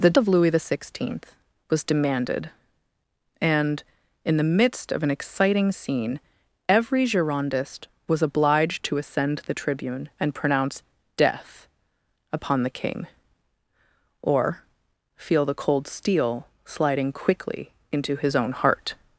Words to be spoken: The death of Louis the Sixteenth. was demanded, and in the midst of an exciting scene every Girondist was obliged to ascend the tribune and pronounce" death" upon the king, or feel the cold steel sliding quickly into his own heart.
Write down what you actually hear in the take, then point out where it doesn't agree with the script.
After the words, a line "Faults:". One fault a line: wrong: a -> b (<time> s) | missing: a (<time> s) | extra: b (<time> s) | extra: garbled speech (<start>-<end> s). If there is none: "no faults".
The of Louis the Sixteenth. was demanded, and in the midst of an exciting scene every Girondist was obliged to ascend the tribune and pronounce" death" upon the king, or feel the cold steel sliding quickly into his own heart.
Faults:
missing: death (0.2 s)